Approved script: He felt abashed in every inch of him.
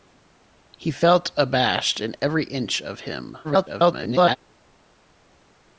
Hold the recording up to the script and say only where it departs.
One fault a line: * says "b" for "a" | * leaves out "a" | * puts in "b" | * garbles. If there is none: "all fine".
* garbles